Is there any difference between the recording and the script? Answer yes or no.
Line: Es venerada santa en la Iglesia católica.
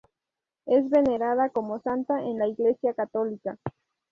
yes